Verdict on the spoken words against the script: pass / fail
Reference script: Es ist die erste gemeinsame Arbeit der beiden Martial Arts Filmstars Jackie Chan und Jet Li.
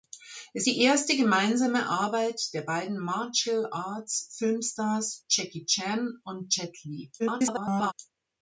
fail